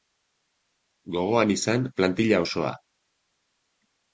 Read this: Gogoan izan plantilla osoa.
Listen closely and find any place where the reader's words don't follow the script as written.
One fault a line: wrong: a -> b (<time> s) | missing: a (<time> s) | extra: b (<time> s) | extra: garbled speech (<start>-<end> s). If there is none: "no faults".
no faults